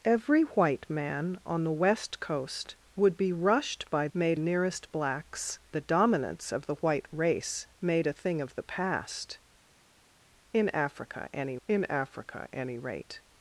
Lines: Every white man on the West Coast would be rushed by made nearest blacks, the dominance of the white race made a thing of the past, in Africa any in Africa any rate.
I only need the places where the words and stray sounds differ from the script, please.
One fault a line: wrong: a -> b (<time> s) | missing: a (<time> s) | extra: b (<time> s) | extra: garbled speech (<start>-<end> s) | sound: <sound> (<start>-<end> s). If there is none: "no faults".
no faults